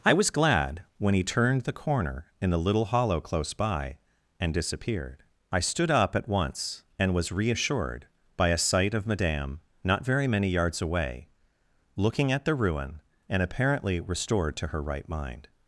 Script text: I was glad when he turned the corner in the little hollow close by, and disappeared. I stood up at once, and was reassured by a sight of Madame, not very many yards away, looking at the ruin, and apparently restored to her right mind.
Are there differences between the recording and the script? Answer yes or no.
no